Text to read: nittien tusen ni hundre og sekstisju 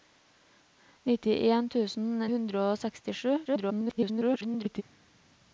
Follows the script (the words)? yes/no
no